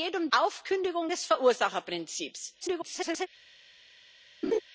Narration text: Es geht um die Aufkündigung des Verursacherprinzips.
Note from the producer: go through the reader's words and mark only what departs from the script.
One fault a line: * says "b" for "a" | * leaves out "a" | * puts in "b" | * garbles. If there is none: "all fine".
* leaves out "die"
* garbles